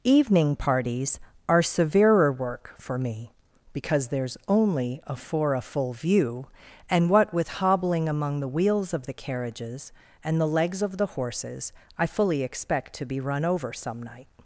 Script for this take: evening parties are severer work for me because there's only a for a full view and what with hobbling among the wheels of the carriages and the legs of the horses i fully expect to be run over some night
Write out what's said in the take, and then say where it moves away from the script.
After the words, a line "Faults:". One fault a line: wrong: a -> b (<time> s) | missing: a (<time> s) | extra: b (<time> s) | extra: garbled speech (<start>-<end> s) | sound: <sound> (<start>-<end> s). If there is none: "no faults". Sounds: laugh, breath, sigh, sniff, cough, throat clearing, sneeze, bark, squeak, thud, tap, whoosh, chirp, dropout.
evening parties are severer work for me because there's only a for a full view and what with hobbling among the wheels of the carriages and the legs of the horses i fully expect to be run over some night
Faults:
no faults